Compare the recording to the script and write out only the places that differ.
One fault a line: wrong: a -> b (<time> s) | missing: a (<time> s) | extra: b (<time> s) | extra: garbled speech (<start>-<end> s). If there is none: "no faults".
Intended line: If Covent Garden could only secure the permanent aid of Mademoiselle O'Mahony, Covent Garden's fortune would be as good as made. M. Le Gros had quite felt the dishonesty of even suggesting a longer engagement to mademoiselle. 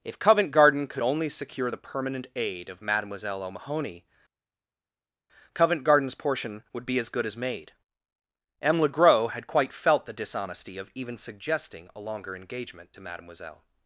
wrong: fortune -> portion (6.1 s)